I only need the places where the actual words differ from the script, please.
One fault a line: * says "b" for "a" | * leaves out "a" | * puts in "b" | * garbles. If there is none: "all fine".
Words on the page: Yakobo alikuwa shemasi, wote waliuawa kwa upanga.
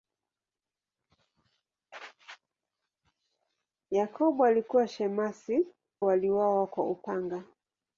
* leaves out "wote"